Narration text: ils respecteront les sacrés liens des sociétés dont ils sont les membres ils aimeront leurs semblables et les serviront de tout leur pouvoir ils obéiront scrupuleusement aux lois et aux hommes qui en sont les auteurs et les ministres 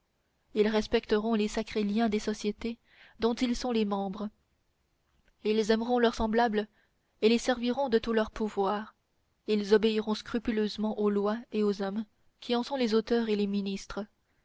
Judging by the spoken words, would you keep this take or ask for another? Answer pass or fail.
pass